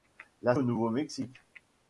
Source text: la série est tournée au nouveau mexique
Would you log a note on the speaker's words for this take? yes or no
yes